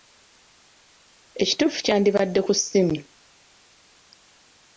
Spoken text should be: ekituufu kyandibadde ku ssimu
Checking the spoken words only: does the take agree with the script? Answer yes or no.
yes